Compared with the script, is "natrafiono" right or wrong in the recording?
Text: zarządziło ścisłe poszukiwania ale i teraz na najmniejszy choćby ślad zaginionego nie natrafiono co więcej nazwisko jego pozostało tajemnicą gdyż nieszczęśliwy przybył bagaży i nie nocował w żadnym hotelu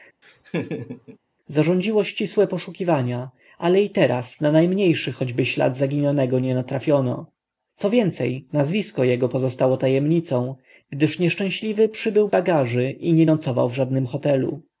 right